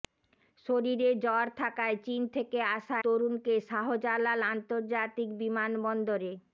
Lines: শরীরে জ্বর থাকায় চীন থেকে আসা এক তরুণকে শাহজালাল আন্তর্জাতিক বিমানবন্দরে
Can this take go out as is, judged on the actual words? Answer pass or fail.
fail